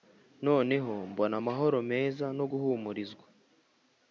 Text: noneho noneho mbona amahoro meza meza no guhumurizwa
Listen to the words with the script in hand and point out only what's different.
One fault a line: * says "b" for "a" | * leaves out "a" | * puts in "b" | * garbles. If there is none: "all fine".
* leaves out "noneho"
* leaves out "meza"